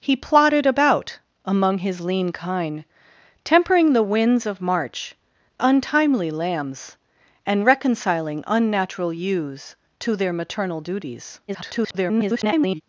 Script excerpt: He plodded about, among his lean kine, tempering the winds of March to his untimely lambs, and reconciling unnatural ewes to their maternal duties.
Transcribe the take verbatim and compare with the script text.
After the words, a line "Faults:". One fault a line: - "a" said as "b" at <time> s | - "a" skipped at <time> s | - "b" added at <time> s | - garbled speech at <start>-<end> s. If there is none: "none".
He plodded about, among his lean kine, tempering the winds of March untimely lambs, and reconciling unnatural ewes to their maternal duties. [garbled]
Faults:
- "to his" skipped at 5.1 s
- garbled speech at 11.5-12.8 s